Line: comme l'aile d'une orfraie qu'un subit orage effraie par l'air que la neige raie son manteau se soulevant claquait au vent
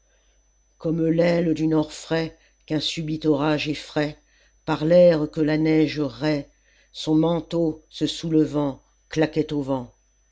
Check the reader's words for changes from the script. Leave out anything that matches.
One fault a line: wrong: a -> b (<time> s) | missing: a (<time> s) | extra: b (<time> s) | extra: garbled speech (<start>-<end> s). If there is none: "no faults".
no faults